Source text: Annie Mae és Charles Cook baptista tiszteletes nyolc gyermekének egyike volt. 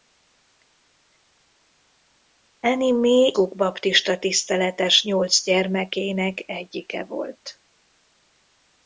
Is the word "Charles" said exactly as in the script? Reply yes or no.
no